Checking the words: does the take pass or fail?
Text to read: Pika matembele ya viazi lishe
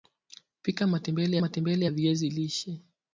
fail